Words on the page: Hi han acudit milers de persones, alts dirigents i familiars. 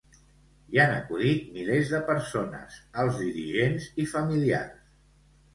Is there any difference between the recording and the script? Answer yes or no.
no